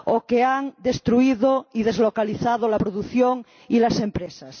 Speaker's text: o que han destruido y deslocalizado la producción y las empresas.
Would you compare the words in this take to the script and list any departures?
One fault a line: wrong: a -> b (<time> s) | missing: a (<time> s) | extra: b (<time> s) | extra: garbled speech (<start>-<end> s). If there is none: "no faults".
no faults